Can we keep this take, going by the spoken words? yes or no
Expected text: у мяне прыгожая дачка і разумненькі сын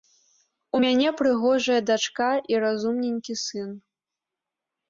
yes